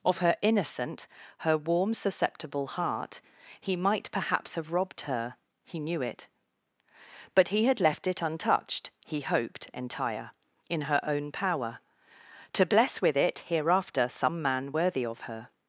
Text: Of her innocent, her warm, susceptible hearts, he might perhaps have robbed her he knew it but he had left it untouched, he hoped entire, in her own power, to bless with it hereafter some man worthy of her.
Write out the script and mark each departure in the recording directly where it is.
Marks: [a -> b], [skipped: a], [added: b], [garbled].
Of her innocent, her warm, susceptible [hearts, -> heart] he might perhaps have robbed her he knew it but he had left it untouched, he hoped entire, in her own power, to bless with it hereafter some man worthy of her.